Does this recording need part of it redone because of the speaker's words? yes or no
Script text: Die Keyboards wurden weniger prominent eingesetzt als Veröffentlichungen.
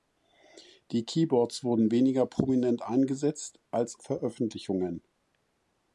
no